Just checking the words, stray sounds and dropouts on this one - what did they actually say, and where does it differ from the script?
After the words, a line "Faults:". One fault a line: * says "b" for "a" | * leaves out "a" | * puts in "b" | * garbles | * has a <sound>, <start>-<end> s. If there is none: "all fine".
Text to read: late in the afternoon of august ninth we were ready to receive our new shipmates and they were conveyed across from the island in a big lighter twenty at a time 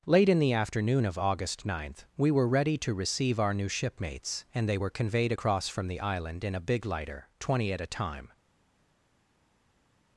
late in the afternoon of august ninth we were ready to receive our new shipmates and they were conveyed across from the island in a big lighter twenty at a time
Faults:
all fine